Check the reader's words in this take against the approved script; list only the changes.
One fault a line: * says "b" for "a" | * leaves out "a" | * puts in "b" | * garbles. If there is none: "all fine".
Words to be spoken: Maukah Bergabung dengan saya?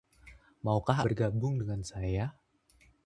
all fine